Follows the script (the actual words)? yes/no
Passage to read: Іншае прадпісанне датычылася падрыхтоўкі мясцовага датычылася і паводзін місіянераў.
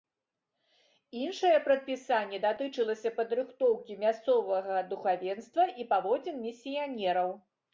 no